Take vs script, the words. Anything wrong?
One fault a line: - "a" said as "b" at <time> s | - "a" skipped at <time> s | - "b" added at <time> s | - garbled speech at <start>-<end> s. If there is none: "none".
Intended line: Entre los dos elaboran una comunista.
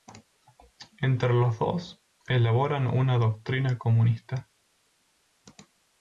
- "doctrina" added at 3.2 s